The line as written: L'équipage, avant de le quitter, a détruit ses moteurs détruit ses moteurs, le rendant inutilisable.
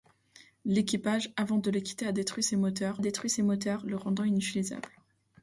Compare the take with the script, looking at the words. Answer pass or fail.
pass